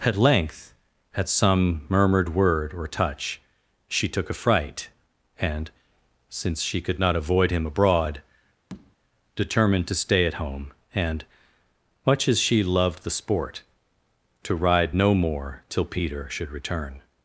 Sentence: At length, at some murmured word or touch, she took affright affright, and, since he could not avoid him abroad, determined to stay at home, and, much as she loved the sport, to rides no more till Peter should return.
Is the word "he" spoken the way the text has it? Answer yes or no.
no